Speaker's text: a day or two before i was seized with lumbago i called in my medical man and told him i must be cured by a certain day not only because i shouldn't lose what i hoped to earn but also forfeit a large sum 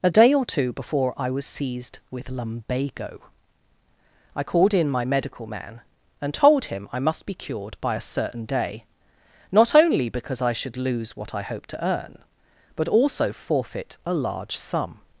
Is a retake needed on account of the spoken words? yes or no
yes